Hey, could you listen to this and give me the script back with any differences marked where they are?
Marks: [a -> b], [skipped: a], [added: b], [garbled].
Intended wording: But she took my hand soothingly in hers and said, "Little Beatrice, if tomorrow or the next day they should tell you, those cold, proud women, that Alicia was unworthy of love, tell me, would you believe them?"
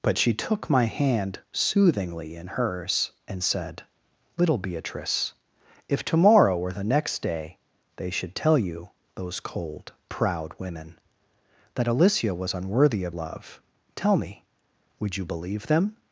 But she took my hand soothingly in hers and said, "Little Beatrice, if tomorrow or the next day they should tell you, those cold, proud women, that Alicia was unworthy of love, tell me, would you believe them?"